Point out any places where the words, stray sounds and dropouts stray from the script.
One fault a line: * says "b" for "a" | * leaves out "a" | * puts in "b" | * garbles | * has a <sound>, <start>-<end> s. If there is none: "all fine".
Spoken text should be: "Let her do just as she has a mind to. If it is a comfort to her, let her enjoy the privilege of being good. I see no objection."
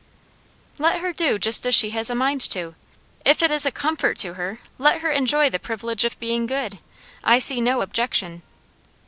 all fine